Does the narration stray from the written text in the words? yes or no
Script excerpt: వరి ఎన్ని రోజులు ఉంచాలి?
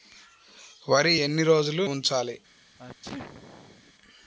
no